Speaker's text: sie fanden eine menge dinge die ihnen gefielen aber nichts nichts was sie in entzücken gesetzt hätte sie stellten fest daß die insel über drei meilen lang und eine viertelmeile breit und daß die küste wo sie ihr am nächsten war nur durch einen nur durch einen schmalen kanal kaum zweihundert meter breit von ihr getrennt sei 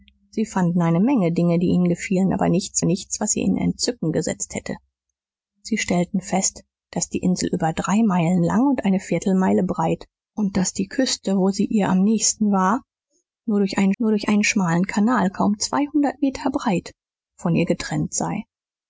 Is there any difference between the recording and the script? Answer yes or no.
no